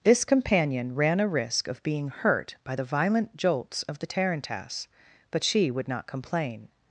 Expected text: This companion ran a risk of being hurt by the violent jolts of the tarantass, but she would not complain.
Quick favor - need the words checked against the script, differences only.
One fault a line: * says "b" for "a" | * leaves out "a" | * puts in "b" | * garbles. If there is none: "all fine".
all fine